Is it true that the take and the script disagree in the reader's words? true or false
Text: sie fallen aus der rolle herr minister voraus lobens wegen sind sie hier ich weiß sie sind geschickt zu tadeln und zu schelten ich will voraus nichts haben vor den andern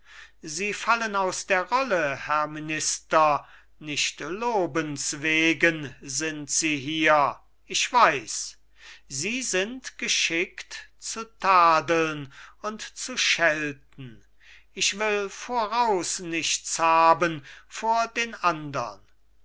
true